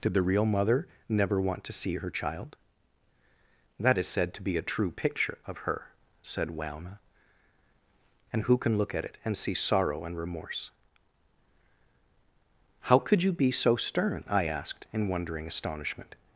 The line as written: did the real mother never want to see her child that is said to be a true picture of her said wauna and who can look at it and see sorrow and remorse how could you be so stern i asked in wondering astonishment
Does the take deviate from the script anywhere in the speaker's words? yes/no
no